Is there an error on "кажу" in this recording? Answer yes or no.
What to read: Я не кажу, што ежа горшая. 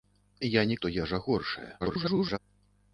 yes